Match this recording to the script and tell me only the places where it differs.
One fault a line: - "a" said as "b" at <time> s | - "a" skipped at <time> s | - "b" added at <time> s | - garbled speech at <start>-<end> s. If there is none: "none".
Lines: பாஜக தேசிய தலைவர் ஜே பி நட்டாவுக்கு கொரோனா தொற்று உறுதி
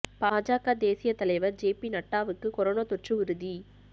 none